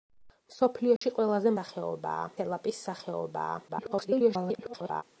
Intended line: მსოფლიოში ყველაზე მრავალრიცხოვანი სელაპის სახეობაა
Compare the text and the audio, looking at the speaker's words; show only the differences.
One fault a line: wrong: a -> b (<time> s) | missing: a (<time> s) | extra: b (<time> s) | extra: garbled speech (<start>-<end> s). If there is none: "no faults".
wrong: მრავალრიცხოვანი -> სახეობაა (1.6 s)
extra: garbled speech (3.7-5.0 s)